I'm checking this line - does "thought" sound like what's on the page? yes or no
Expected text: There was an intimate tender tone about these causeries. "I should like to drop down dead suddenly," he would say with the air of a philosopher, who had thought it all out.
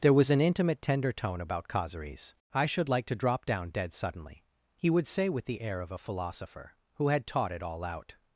no